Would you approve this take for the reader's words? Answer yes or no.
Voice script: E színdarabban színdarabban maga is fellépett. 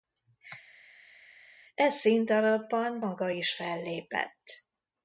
no